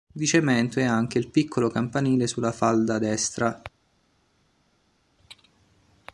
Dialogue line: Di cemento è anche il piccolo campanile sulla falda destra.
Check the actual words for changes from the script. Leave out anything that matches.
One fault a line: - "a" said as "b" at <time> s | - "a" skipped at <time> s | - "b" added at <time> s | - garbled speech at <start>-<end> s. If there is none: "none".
none